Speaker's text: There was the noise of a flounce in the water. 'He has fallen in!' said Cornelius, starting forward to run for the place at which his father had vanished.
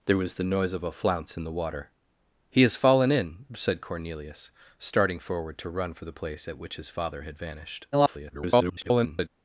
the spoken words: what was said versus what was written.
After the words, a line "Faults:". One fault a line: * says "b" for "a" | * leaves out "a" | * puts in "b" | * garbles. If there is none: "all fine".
There was the noise of a flounce in the water. 'He has fallen in!' said Cornelius, starting forward to run for the place at which his father had vanished. [garbled]
Faults:
* garbles